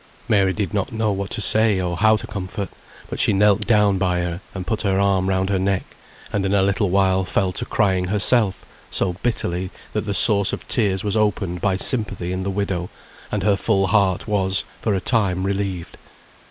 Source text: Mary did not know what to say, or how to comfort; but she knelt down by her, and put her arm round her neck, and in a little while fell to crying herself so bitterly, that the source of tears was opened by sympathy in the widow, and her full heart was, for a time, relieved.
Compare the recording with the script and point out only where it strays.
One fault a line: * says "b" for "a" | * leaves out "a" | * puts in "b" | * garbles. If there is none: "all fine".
all fine